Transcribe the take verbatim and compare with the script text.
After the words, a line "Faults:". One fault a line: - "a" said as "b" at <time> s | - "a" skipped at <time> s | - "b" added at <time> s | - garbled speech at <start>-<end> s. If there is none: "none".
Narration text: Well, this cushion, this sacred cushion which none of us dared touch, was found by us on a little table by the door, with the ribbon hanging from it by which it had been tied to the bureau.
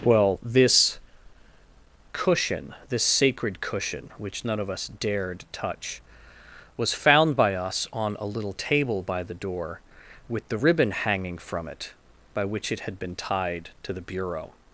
Well, this cushion, this sacred cushion which none of us dared touch, was found by us on a little table by the door, with the ribbon hanging from it by which it had been tied to the bureau.
Faults:
none